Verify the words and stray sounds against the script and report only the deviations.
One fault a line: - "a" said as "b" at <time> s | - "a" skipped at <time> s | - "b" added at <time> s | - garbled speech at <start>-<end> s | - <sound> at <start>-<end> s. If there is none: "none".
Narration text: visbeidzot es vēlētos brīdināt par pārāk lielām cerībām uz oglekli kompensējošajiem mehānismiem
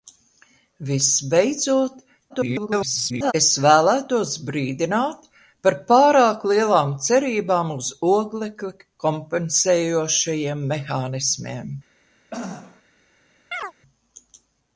- garbled speech at 2.3-3.3 s
- throat clearing at 12.3-12.8 s
- chirp at 13.5-13.7 s